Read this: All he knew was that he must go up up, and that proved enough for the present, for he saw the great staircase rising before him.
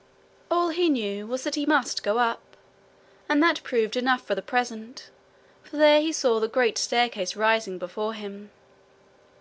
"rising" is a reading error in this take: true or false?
false